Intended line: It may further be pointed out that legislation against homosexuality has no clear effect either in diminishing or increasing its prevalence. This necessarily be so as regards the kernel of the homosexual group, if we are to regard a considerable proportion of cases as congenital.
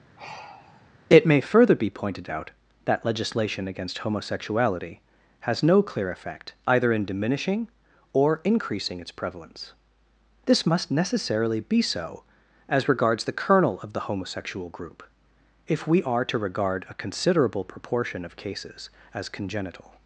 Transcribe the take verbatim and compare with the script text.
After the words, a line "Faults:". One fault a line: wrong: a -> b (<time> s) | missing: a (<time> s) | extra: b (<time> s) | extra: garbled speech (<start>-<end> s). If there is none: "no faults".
It may further be pointed out that legislation against homosexuality has no clear effect either in diminishing or increasing its prevalence. This must necessarily be so as regards the kernel of the homosexual group, if we are to regard a considerable proportion of cases as congenital.
Faults:
extra: must (10.7 s)